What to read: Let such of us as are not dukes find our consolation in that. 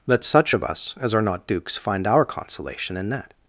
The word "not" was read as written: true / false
true